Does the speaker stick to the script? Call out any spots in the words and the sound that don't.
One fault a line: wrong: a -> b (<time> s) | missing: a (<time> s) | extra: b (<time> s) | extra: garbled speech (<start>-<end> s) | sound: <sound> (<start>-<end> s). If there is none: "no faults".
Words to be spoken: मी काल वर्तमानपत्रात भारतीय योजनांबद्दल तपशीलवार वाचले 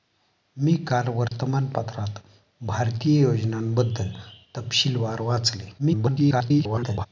sound: dropout (1.3-1.3 s)
extra: garbled speech (5.8-7.1 s)